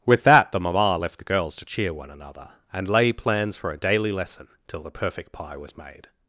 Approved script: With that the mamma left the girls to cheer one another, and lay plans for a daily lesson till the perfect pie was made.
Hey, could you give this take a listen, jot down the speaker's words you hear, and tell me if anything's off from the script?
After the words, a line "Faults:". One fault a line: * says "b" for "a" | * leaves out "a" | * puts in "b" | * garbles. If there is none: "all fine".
With that the mamma left the girls to cheer one another, and lay plans for a daily lesson till the perfect pie was made.
Faults:
all fine